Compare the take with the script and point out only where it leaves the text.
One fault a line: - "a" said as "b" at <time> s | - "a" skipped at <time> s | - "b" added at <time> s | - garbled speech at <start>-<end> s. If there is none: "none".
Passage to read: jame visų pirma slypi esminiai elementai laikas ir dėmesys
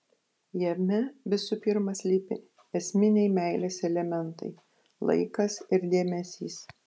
- "meilės" added at 3.4 s